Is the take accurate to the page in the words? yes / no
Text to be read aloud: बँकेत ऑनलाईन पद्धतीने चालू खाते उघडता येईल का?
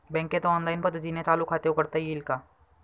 yes